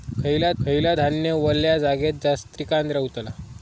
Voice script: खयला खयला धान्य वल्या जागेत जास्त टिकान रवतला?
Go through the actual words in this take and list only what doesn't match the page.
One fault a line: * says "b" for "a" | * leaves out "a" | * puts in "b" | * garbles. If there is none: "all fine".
all fine